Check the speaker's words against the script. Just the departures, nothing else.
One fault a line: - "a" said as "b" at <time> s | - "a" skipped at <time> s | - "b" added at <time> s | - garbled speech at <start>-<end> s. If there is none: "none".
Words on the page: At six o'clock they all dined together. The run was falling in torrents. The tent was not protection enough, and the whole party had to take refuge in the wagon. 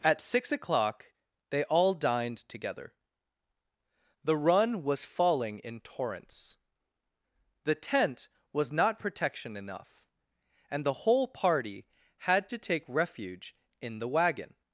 none